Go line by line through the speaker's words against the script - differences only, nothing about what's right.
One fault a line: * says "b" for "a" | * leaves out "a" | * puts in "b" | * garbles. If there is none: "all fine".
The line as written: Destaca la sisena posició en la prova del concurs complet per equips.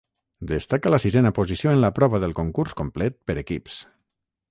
all fine